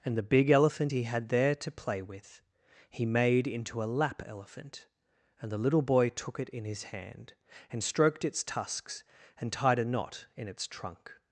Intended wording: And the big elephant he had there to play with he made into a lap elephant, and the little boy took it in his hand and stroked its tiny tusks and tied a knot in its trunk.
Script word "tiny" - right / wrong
wrong